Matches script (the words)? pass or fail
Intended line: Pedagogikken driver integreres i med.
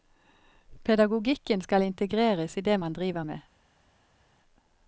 fail